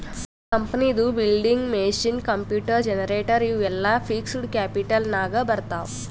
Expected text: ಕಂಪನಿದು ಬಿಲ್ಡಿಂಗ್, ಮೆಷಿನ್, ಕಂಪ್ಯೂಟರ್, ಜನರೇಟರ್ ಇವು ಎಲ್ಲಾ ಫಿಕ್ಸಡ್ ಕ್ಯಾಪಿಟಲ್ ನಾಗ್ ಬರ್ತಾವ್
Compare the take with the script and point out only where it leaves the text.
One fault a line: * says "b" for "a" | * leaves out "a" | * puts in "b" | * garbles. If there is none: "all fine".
all fine